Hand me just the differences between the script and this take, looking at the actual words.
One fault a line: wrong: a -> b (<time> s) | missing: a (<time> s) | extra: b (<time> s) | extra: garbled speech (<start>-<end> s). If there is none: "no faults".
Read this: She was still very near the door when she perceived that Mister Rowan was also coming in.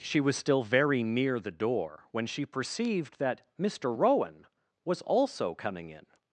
no faults